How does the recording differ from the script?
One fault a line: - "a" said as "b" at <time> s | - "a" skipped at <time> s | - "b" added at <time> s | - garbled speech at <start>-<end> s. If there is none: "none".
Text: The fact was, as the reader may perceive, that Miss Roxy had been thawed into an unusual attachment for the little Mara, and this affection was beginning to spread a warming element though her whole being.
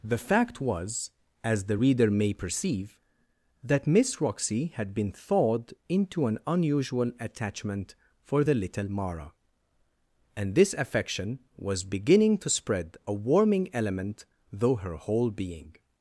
none